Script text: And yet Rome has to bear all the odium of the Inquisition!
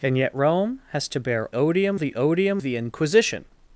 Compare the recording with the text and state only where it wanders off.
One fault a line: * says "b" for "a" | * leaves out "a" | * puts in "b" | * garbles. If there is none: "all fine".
* says "odium" for "all"
* leaves out "of"